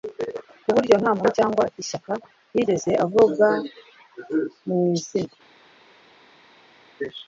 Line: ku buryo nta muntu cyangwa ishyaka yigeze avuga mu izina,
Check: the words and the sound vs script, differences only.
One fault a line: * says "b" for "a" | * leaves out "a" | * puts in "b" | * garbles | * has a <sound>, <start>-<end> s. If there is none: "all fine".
all fine